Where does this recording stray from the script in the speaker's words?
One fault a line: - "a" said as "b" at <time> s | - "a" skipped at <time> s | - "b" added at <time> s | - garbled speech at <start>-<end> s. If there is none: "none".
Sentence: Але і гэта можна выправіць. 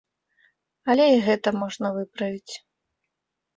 none